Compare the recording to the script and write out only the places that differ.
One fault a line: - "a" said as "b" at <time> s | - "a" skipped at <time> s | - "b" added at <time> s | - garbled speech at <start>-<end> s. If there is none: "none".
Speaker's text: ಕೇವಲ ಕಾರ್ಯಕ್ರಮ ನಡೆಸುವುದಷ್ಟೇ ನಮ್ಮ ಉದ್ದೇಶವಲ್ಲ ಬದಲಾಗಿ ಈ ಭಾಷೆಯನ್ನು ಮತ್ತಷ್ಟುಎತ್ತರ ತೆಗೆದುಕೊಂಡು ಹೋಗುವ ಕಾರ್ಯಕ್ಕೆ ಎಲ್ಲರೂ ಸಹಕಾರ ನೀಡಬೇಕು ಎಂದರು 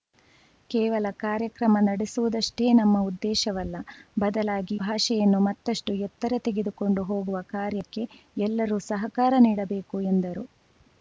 - "ಈ" skipped at 4.8 s